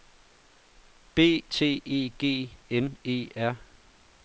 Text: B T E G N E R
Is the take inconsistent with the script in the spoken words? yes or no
no